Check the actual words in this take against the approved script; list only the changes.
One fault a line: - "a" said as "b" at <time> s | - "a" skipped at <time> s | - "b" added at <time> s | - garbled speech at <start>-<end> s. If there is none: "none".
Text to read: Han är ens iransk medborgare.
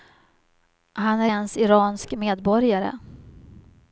none